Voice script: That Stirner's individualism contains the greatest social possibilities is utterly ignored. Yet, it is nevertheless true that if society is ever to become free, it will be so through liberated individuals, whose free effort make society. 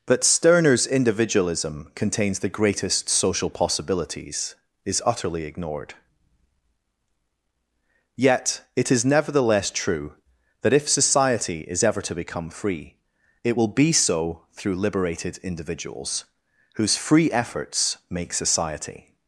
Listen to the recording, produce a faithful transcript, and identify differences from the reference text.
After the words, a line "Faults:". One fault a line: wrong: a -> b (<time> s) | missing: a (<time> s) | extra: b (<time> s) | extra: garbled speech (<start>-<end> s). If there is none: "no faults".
That Stirner's individualism contains the greatest social possibilities is utterly ignored. Yet, it is nevertheless true that if society is ever to become free, it will be so through liberated individuals, whose free efforts make society.
Faults:
wrong: effort -> efforts (17.3 s)